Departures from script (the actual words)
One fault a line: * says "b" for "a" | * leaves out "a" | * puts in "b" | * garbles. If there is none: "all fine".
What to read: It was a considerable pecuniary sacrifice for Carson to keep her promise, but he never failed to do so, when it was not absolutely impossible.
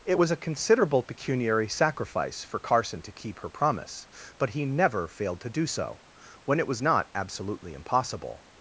all fine